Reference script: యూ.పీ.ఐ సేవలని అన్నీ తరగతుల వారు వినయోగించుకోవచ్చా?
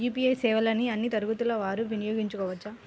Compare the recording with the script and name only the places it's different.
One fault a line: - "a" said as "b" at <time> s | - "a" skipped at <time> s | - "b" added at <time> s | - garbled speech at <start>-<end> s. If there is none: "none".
none